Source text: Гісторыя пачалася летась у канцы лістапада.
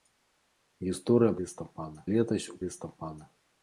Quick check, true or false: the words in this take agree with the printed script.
false